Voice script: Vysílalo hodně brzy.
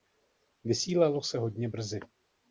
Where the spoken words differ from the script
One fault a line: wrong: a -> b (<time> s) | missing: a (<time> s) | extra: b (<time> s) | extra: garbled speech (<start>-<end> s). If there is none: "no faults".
extra: se (1.2 s)